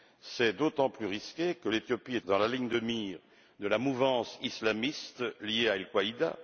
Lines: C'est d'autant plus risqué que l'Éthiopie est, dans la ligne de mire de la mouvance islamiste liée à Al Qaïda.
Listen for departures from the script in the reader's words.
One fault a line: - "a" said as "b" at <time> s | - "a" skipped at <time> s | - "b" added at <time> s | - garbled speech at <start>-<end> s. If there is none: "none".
none